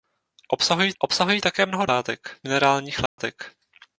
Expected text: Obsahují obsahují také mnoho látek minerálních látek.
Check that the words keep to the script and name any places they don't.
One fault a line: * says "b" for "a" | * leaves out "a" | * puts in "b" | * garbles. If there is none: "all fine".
all fine